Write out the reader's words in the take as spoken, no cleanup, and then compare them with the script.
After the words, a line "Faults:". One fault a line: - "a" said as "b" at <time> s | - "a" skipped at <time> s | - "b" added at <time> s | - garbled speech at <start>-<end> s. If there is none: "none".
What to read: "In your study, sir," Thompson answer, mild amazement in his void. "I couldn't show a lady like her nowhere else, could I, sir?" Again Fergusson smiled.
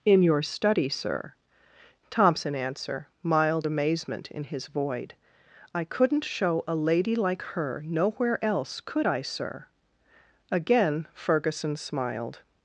"In your study, sir," Thompson answer, mild amazement in his void. "I couldn't show a lady like her nowhere else, could I, sir?" Again Fergusson smiled.
Faults:
none